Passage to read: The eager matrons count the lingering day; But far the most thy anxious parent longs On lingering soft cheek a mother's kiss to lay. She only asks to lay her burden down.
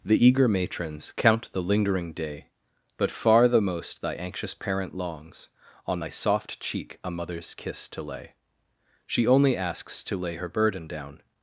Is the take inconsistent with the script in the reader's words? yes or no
yes